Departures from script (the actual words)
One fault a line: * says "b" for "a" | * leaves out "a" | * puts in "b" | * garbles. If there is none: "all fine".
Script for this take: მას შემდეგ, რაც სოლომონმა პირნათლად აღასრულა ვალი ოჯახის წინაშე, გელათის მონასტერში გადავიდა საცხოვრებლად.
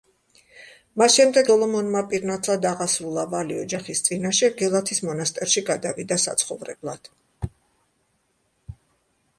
* leaves out "რაც"